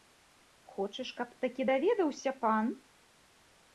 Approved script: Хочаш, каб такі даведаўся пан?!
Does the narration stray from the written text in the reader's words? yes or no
no